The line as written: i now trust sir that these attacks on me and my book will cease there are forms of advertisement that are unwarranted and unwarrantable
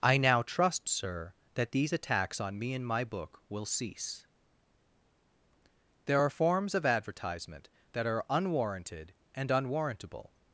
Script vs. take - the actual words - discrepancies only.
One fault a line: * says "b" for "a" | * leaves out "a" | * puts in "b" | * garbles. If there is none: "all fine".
all fine